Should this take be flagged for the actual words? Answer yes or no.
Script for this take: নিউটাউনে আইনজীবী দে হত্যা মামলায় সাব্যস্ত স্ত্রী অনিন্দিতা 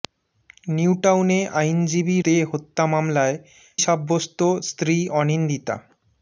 no